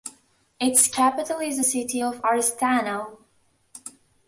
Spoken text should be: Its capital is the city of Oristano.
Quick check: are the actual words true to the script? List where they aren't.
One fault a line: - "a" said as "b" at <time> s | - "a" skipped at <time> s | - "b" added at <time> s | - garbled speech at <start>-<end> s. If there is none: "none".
none